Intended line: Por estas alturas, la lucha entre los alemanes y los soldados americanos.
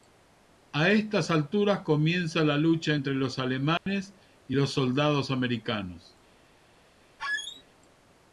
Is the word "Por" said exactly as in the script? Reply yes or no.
no